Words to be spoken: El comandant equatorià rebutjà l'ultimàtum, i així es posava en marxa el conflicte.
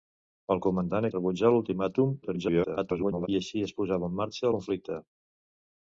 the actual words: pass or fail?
fail